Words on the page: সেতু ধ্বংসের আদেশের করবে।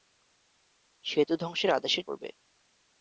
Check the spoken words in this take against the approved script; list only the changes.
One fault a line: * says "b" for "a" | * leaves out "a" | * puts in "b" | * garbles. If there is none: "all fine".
all fine